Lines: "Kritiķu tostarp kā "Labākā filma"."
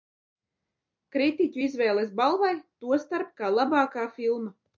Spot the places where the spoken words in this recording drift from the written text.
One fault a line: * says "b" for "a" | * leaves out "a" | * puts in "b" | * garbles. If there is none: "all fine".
* puts in "izvēles balvai"